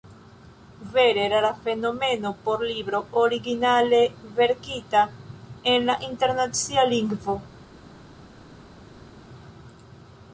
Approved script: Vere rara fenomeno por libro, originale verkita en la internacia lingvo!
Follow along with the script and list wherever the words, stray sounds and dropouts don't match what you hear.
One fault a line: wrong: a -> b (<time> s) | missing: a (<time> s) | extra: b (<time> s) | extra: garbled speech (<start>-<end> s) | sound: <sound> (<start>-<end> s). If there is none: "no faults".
no faults